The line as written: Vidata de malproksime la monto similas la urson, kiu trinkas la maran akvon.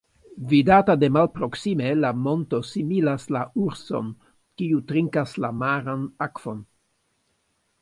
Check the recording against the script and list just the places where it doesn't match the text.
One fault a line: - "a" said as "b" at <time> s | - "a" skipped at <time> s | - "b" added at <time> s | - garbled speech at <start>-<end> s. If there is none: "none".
none